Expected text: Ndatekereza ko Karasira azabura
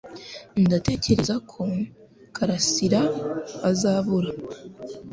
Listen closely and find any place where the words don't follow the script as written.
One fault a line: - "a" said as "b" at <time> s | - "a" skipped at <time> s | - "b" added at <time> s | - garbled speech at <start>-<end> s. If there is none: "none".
none